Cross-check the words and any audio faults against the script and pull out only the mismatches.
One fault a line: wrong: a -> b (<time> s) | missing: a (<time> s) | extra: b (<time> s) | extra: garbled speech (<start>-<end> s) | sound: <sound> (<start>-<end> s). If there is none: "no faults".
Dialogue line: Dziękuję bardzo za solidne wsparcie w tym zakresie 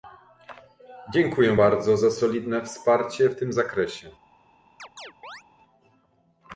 sound: chirp (4.8-5.4 s)